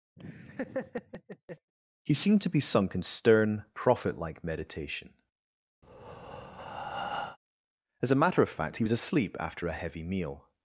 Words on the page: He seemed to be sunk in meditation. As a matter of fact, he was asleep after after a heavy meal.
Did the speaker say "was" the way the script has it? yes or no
yes